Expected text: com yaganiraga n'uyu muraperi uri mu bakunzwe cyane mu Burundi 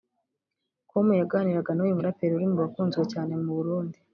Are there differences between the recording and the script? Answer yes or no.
no